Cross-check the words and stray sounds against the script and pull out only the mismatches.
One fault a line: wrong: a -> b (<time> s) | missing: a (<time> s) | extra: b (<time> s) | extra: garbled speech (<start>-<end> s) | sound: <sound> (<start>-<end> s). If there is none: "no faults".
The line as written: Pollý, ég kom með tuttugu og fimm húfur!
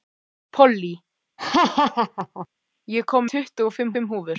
sound: laugh (1.4-2.5 s)
missing: með (3.3 s)
extra: fimm (3.9 s)